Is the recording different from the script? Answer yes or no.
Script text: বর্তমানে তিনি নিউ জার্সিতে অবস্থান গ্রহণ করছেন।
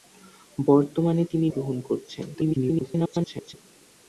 yes